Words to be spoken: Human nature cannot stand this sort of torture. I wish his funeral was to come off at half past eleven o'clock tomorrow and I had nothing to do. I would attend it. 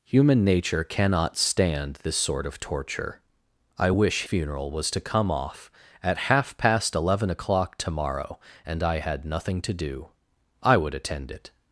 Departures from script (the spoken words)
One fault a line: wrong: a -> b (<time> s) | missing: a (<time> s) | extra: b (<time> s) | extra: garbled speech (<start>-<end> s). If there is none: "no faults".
missing: his (4.2 s)